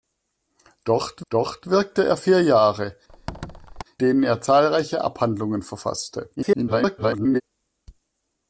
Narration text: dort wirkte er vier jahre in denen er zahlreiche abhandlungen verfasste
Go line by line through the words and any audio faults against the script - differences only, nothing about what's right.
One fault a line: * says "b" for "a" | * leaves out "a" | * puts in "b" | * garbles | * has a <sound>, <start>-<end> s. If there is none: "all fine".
* puts in "dort"
* leaves out "in"
* has a squeak, 3.1-3.8 s
* garbles